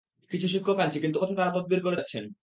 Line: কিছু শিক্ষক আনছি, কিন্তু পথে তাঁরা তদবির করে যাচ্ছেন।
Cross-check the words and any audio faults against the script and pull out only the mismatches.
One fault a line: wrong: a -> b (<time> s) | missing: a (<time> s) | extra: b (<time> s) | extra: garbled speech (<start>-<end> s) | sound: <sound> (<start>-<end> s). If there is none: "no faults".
no faults